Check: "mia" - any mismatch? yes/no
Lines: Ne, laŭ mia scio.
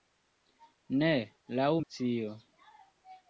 yes